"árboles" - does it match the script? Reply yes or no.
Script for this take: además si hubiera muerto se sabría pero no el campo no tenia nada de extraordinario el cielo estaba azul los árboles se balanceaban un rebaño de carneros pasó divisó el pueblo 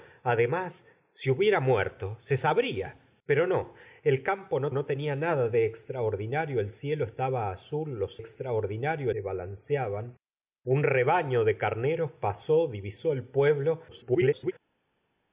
no